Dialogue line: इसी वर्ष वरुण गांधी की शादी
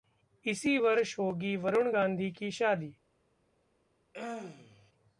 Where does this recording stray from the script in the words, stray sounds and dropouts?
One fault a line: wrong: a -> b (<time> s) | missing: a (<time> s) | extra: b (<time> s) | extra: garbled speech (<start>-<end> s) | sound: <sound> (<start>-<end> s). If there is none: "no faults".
extra: होगी (1.2 s)
sound: throat clearing (4.1-4.9 s)